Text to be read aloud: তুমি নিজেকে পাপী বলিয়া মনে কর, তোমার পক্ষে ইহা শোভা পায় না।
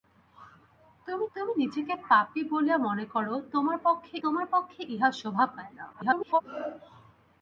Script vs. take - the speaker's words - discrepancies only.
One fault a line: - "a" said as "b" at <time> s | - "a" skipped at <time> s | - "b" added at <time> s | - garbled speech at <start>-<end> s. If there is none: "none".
- "তুমি" added at 1.4 s
- "তোমার পক্ষে" added at 4.2 s
- garbled speech at 5.9-6.4 s